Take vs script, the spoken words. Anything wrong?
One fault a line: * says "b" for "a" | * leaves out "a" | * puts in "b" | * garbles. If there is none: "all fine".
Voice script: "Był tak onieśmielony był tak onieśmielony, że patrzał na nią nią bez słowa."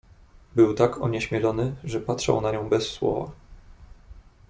* leaves out "był tak onieśmielony"
* leaves out "nią"